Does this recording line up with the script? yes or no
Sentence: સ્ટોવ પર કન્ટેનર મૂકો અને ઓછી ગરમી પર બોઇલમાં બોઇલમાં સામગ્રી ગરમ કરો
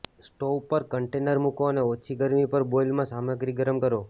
no